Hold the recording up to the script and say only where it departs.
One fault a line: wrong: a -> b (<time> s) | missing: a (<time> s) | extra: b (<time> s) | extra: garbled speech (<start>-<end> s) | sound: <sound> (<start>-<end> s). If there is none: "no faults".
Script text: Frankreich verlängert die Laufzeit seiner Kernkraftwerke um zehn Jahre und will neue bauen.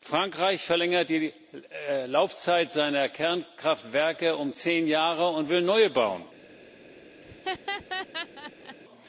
sound: laugh (7.2-8.8 s)